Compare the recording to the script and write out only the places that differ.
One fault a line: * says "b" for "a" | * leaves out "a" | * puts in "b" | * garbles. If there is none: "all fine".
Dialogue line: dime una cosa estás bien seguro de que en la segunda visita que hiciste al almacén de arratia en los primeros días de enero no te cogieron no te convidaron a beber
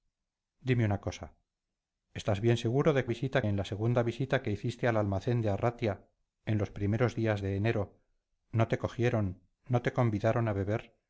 * says "visita" for "que"